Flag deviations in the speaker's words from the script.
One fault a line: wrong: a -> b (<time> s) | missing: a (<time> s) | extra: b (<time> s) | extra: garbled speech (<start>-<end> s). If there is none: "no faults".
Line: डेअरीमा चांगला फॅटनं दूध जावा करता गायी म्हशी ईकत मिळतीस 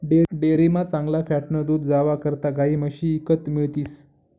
no faults